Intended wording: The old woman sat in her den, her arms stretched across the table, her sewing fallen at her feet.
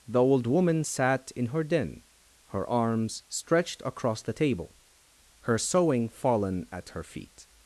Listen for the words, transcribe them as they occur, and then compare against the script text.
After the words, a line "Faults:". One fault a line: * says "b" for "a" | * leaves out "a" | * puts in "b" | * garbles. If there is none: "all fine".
The old woman sat in her den, her arms stretched across the table, her sewing fallen at her feet.
Faults:
all fine